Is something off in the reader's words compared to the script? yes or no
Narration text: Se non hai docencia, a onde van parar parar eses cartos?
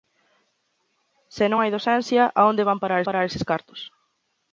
no